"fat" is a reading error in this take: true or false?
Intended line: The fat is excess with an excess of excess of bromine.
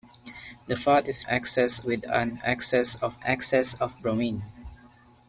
false